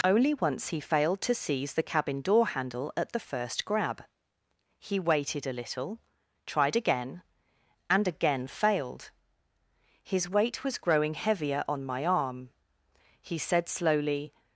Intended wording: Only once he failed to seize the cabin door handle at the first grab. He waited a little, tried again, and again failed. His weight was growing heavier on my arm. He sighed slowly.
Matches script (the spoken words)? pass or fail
fail